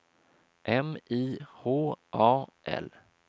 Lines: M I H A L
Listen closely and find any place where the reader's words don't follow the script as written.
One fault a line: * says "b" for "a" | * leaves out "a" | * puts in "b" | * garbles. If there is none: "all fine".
all fine